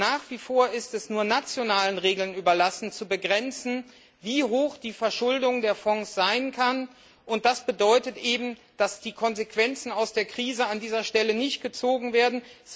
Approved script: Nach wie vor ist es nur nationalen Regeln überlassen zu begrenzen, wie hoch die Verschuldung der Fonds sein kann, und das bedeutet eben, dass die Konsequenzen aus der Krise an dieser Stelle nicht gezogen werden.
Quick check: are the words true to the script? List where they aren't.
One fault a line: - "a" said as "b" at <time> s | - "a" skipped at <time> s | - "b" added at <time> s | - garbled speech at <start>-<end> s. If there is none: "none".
none